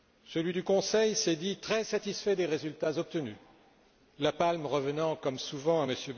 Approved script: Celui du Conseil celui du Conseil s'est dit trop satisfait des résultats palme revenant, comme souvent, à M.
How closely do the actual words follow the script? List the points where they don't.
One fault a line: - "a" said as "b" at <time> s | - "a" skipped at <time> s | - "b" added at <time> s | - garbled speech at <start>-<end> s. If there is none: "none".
- "celui du Conseil" skipped at 1.1 s
- "trop" said as "très" at 1.6 s
- "obtenus la" added at 3.0 s